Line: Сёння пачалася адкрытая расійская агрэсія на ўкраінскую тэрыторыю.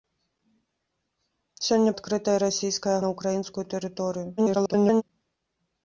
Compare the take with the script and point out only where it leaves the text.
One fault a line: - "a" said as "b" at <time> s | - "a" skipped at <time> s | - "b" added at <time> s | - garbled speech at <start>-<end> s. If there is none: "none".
- "пачалася" skipped at 1.9 s
- "агрэсія" skipped at 3.0 s
- garbled speech at 4.4-5.0 s